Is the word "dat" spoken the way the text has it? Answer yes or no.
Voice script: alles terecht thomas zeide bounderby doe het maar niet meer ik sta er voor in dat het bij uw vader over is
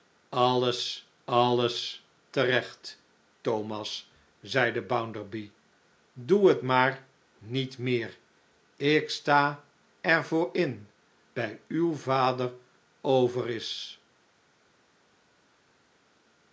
no